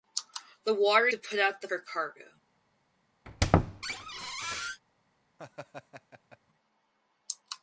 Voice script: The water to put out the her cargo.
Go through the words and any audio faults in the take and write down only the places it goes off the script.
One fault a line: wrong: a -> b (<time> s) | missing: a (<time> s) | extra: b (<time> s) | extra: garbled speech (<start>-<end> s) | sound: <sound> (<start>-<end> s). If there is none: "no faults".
sound: squeak (3.3-4.8 s)
sound: laugh (5.4-6.4 s)